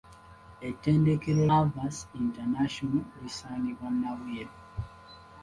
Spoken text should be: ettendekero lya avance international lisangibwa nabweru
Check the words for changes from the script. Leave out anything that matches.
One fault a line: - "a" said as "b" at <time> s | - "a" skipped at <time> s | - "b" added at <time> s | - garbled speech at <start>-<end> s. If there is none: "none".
- "lya" skipped at 1.4 s